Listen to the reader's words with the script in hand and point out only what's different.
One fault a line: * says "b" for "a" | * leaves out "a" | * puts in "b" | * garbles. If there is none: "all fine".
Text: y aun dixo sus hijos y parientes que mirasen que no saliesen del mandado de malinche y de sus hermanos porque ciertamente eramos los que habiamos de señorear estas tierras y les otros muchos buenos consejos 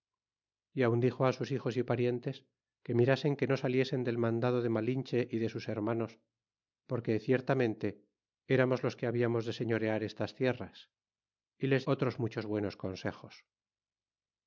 all fine